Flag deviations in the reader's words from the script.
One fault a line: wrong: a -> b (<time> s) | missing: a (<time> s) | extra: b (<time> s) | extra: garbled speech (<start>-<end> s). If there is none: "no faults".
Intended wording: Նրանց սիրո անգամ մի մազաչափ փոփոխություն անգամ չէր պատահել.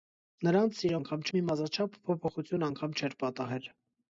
no faults